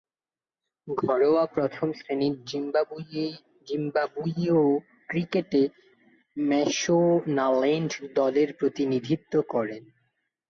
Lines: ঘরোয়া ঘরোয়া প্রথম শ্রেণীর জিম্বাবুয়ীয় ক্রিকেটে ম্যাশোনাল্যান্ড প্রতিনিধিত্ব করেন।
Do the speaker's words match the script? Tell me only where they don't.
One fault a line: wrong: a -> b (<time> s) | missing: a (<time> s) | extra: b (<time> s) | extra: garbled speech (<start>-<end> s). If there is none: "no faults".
missing: ঘরোয়া (1.4 s)
extra: দলের (8.1 s)